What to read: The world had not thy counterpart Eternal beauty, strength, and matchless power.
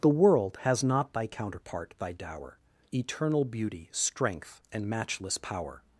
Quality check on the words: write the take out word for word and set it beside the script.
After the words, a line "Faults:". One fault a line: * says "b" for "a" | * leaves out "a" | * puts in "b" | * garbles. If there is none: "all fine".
The world has not thy counterpart thy dower, Eternal beauty, strength, and matchless power.
Faults:
* says "has" for "had"
* puts in "thy dower"